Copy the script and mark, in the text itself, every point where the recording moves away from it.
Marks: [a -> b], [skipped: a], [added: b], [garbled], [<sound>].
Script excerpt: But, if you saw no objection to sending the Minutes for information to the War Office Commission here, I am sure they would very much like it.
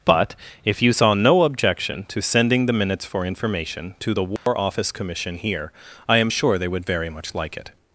But, if you saw no objection to sending the Minutes for information to the War [dropout] Office Commission here, I am sure they would very much like it.